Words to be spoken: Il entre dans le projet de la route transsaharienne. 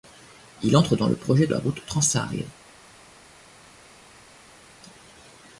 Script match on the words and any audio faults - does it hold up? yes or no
no